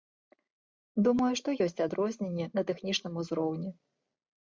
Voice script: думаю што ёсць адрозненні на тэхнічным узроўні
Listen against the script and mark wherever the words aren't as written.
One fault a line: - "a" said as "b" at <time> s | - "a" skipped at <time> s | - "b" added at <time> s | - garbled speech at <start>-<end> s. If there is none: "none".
none